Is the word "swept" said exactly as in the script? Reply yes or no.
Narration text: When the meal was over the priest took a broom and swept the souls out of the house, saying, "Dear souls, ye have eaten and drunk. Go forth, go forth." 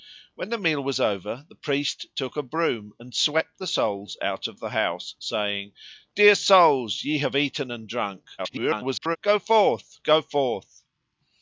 yes